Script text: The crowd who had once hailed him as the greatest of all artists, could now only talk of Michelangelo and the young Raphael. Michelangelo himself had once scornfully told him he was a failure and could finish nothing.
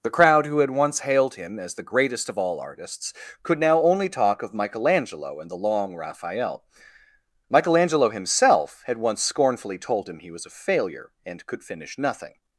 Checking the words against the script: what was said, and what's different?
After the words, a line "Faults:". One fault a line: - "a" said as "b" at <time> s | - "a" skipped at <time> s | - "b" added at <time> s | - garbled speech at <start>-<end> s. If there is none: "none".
The crowd who had once hailed him as the greatest of all artists, could now only talk of Michelangelo and the long Raphael. Michelangelo himself had once scornfully told him he was a failure and could finish nothing.
Faults:
- "young" said as "long" at 5.6 s